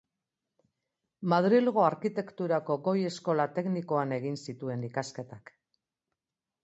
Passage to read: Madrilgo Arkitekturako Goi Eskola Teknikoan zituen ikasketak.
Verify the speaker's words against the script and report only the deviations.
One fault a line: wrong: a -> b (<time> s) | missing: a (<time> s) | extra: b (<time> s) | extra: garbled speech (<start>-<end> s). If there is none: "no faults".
extra: egin (4.2 s)